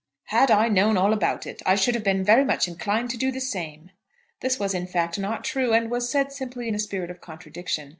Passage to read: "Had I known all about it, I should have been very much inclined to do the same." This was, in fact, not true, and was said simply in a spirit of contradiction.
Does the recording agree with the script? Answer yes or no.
yes